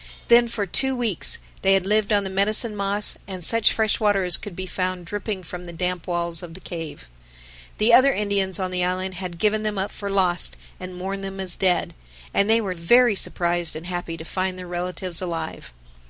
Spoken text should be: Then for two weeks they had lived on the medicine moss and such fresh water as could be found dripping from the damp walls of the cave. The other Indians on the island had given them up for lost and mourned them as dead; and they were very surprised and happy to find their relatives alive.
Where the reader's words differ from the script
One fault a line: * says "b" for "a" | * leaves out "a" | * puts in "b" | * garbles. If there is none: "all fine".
all fine